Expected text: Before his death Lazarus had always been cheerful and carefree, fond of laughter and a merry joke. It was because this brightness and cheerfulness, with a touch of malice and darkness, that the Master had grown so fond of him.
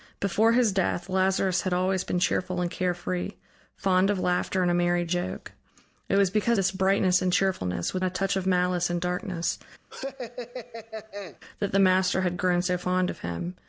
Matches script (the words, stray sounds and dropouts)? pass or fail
fail